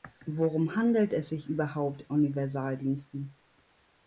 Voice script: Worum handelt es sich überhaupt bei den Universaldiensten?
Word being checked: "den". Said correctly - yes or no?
no